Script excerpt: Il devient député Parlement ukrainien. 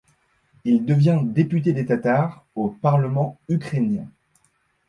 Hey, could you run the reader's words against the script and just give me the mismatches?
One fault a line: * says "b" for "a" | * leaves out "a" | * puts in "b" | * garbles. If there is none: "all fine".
* puts in "des Tatars au"